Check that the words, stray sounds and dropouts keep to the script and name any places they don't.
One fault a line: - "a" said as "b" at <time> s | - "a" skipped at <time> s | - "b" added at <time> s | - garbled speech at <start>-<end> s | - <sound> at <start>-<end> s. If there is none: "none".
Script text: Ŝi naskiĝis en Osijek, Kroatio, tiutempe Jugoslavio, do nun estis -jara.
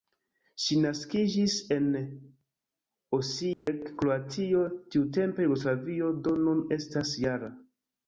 - dropout at 3.5-3.7 s
- "estis" said as "estas" at 6.8 s